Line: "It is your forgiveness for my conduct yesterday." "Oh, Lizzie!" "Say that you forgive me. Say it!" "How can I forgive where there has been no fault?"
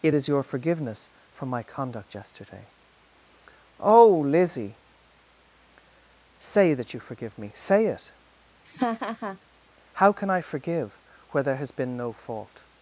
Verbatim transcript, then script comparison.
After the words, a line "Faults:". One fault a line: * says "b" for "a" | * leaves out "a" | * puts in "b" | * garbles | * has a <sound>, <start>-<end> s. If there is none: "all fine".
"It is your forgiveness for my conduct yesterday." "Oh, Lizzie!" "Say that you forgive me. Say it!" "How can I forgive where there has been no fault?"
Faults:
* has a laugh, 8.6-9.4 s